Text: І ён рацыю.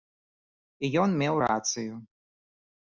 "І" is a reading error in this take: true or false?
false